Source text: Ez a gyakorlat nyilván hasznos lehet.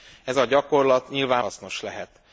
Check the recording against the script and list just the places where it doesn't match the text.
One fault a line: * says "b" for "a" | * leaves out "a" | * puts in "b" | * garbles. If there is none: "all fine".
all fine